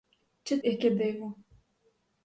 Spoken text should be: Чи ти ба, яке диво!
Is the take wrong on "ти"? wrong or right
wrong